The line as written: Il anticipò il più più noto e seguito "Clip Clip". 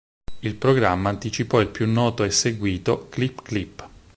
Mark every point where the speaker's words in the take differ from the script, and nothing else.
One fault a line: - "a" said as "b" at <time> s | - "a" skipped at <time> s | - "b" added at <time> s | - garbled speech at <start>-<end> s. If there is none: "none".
- "programma" added at 0.6 s
- "più" skipped at 1.9 s